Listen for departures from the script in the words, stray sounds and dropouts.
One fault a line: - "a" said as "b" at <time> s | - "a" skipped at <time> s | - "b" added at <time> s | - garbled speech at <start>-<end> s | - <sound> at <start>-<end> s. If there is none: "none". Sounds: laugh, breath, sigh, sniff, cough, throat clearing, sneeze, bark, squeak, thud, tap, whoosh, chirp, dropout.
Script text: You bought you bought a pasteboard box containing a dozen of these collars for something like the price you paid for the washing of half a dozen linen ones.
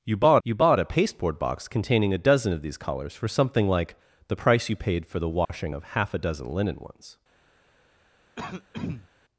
- dropout at 5.4-5.5 s
- throat clearing at 8.4-9.1 s